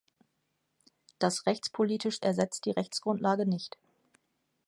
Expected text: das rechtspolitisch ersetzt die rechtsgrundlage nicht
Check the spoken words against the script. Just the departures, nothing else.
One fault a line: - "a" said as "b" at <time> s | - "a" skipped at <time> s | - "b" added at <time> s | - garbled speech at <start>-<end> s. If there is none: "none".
none